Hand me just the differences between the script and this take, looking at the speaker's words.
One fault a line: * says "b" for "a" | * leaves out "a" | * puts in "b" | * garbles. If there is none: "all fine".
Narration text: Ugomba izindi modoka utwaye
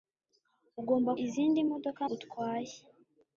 all fine